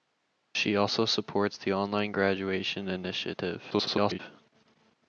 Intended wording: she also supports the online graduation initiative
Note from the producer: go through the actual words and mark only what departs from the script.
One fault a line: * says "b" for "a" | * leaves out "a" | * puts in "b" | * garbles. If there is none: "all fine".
* garbles